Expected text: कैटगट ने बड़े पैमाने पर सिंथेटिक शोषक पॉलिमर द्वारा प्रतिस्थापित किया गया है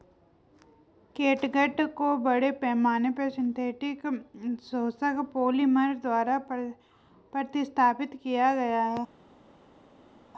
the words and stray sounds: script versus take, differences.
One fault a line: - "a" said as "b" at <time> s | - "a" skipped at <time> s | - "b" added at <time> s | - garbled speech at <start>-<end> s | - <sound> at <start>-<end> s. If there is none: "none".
- "ने" said as "को" at 1.9 s